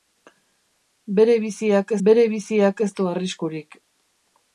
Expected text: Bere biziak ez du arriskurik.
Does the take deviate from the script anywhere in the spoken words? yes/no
yes